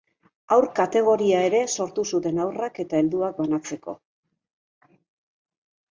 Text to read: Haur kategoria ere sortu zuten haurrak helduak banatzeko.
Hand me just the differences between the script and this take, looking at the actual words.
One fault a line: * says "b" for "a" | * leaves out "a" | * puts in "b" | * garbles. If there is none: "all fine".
* puts in "eta"